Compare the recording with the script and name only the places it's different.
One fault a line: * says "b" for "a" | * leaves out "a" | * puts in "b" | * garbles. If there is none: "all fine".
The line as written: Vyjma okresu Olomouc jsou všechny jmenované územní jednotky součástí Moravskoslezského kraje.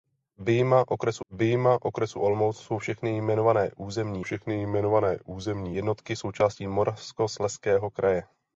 * puts in "vyjma okresu"
* puts in "všechny jmenované územní"